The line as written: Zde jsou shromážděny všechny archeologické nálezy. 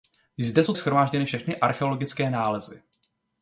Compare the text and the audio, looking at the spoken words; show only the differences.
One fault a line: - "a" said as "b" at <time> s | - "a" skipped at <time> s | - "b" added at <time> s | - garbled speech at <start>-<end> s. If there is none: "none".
none